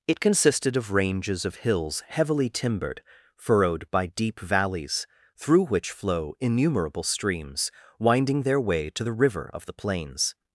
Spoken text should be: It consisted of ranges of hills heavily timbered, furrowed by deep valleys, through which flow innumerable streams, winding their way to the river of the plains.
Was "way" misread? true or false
false